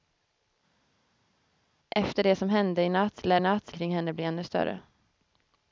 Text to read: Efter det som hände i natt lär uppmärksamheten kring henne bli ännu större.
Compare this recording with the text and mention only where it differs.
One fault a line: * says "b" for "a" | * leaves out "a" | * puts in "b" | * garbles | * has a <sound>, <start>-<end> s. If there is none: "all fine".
* says "natt" for "uppmärksamheten"